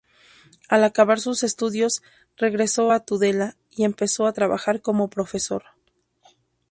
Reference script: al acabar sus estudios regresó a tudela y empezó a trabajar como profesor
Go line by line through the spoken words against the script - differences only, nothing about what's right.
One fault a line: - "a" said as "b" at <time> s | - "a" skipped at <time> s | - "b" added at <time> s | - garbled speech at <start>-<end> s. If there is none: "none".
none